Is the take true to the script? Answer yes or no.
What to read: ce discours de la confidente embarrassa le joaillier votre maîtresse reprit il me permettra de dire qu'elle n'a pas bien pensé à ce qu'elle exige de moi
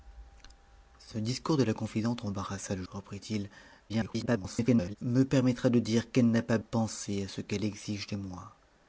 no